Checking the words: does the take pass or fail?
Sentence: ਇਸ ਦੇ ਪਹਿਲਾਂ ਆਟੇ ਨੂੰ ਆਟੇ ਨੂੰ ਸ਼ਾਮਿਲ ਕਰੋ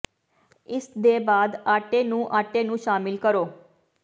fail